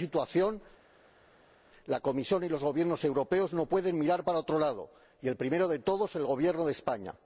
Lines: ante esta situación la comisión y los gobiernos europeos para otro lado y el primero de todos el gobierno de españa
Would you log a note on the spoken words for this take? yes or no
yes